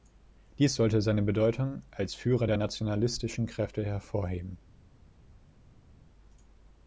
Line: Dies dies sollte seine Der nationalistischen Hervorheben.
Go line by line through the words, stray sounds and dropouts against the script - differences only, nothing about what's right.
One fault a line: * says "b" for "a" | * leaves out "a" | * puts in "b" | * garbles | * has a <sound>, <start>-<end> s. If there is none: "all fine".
* leaves out "dies"
* puts in "Bedeutung als Führer"
* puts in "Kräfte"